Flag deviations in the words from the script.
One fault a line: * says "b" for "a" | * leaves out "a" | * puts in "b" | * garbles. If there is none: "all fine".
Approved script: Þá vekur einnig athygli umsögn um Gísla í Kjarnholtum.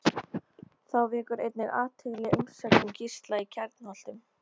all fine